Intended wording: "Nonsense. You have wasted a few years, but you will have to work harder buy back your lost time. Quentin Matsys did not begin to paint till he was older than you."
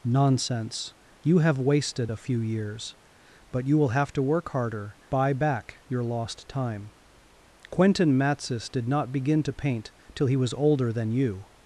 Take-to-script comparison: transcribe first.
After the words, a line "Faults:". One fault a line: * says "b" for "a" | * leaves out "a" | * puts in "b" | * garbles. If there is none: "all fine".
"Nonsense. You have wasted a few years, but you will have to work harder buy back your lost time. Quentin Matsys did not begin to paint till he was older than you."
Faults:
all fine